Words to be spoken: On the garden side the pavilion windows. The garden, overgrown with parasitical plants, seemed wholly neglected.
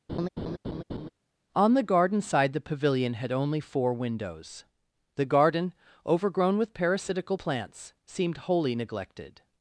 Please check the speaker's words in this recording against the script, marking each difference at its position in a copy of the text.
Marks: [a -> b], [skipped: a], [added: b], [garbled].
On the garden side the pavilion [added: had only four] windows. The garden, overgrown with parasitical plants, seemed wholly neglected.